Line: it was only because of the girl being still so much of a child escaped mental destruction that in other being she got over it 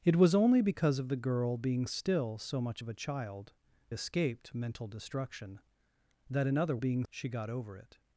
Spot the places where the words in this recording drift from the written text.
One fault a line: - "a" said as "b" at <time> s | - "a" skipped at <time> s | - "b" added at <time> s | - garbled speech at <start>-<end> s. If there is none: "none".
none